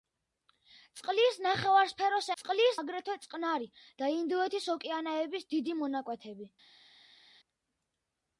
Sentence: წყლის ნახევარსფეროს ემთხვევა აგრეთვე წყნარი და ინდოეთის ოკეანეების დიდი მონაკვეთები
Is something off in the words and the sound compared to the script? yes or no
yes